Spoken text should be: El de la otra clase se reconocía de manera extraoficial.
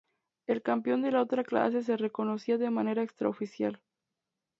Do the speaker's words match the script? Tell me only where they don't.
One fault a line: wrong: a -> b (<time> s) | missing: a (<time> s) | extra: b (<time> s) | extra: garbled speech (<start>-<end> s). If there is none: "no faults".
extra: campeón (0.6 s)